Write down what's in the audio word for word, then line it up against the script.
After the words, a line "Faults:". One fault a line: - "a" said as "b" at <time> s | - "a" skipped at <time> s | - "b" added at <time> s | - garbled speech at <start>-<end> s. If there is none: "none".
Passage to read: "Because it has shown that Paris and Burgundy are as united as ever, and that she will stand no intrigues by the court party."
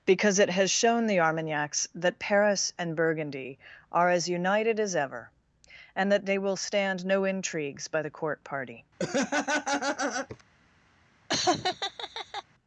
"Because it has shown the Armagnacs that Paris and Burgundy are as united as ever, and that they will stand no intrigues by the court party."
Faults:
- "the Armagnacs" added at 1.1 s
- "she" said as "they" at 6.2 s